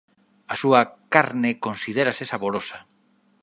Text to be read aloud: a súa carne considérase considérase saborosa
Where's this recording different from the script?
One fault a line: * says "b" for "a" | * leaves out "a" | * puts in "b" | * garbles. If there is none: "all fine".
* leaves out "considérase"